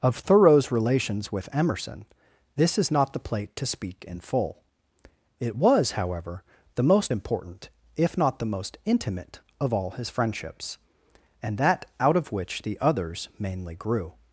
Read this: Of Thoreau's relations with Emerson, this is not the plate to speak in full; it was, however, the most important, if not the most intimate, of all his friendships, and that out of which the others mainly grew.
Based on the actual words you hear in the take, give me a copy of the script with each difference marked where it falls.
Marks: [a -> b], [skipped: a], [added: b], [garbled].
Of Thoreau's relations with Emerson, this is not the plate to speak in full; it was, however, the most important, if not the most intimate, of all his friendships, and that out of which the others mainly grew.